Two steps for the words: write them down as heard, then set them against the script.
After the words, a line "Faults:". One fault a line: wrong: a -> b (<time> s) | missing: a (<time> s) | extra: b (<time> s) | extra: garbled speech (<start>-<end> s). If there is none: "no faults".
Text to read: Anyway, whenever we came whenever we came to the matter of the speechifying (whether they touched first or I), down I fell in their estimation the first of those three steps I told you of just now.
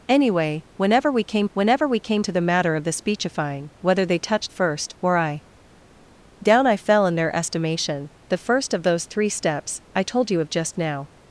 Anyway, whenever we came whenever we came to the matter of the speechifying (whether they touched first or I), down I fell in their estimation the first of those three steps I told you of just now.
Faults:
no faults